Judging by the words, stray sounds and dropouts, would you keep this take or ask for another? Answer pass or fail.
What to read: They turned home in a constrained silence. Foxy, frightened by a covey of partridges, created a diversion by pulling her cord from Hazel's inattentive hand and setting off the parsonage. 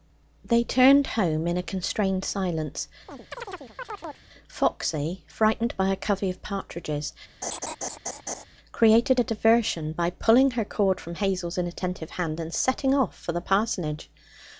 fail